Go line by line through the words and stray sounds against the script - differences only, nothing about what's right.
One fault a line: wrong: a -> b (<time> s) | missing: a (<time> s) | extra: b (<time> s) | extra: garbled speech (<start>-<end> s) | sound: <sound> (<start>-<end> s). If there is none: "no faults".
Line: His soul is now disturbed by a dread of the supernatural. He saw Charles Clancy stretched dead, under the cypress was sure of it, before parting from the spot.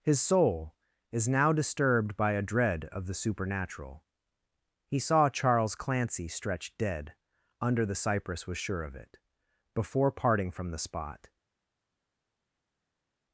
no faults